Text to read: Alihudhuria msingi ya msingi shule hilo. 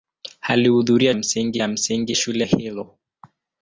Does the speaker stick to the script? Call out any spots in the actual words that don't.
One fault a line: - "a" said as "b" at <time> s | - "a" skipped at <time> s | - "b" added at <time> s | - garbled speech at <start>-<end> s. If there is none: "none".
none